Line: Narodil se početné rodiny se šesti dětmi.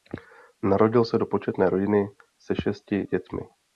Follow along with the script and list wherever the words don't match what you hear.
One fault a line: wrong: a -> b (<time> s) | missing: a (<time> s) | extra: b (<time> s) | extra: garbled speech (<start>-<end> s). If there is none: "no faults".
extra: do (1.2 s)